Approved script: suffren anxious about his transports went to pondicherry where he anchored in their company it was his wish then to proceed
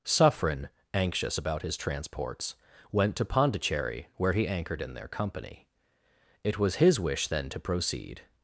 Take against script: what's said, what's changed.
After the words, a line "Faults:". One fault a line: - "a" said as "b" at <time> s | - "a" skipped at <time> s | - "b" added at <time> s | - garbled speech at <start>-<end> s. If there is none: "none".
suffren anxious about his transports went to pondicherry where he anchored in their company it was his wish then to proceed
Faults:
none